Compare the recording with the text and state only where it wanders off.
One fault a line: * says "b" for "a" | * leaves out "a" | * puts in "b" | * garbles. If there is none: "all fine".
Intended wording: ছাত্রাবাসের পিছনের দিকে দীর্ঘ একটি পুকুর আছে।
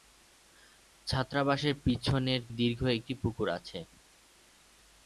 * leaves out "দিকে"